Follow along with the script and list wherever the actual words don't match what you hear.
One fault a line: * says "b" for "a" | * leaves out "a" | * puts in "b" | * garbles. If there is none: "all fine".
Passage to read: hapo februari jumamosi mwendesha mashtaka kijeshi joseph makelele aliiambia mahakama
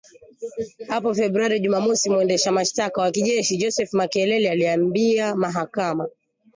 * puts in "wa"